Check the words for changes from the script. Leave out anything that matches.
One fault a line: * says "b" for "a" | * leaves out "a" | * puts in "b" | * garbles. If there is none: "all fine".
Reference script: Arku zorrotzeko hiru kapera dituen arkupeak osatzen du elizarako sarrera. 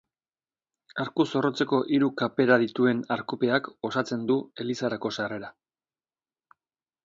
all fine